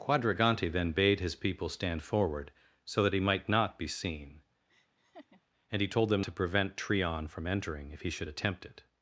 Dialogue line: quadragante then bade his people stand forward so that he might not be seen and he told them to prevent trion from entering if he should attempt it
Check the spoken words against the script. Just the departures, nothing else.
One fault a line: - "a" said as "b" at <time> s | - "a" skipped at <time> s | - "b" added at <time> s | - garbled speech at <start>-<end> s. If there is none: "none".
none